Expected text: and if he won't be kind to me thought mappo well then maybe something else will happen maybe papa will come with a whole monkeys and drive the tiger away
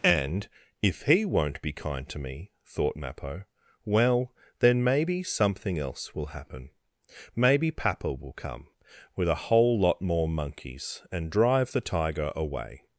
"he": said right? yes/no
yes